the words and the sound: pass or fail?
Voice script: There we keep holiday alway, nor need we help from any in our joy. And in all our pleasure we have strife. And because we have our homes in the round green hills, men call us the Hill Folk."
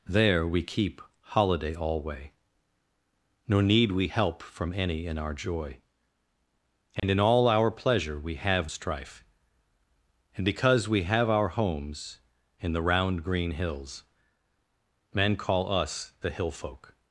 fail